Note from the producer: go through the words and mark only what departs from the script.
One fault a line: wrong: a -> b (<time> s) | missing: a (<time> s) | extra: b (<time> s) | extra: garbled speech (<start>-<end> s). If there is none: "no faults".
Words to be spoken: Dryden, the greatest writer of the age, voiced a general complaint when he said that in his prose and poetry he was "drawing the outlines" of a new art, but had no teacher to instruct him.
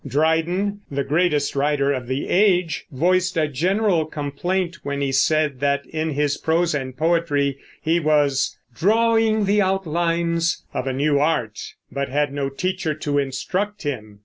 no faults